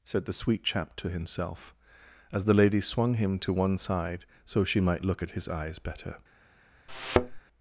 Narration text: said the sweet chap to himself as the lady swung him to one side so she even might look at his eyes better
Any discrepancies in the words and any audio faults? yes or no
yes